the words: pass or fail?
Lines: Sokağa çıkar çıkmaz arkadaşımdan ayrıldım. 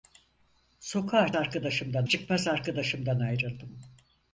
fail